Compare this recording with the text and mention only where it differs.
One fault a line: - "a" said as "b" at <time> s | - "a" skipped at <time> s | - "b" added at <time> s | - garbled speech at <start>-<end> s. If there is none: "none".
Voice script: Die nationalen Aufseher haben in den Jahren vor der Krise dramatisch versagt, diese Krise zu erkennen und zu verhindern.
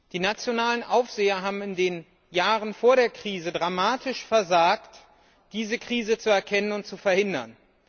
none